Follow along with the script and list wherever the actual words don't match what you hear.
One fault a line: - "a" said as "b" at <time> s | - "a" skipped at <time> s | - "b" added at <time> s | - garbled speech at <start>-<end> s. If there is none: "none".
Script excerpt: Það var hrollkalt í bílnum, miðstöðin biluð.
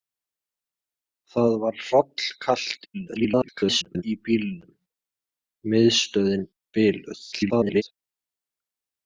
- garbled speech at 2.9-4.0 s
- garbled speech at 7.3-7.8 s